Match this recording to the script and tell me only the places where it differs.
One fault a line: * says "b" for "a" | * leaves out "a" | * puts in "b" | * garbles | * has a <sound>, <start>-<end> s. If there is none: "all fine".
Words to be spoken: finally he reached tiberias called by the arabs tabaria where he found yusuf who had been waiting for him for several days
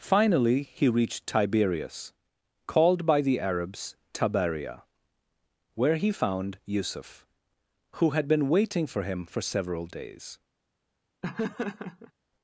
* has a laugh, 11.2-12.1 s